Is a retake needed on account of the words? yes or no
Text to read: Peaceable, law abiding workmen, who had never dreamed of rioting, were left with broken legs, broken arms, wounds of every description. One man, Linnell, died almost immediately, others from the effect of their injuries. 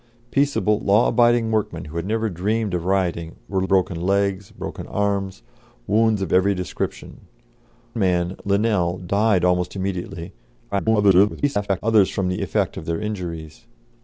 yes